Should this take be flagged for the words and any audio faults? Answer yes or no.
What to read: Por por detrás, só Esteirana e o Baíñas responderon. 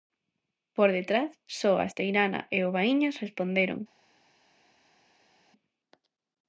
yes